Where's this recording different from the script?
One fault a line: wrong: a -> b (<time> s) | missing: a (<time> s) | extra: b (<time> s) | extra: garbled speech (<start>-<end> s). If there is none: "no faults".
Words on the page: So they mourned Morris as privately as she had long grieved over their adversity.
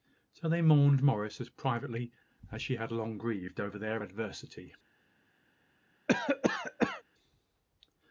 no faults